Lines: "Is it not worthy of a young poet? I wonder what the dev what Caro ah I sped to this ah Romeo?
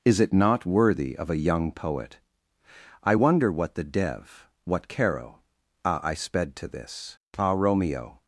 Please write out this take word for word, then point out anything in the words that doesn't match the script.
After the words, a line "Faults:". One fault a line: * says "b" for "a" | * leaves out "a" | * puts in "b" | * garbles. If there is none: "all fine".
"Is it not worthy of a young poet? I wonder what the dev what Caro ah I sped to this ah Romeo?
Faults:
all fine